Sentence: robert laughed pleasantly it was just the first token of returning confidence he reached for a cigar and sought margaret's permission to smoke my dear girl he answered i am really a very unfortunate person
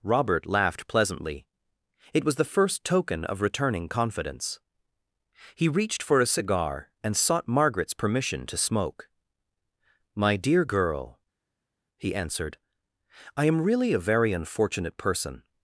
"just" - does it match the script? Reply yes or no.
no